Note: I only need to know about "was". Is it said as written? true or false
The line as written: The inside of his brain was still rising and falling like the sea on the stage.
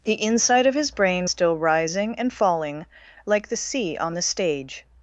false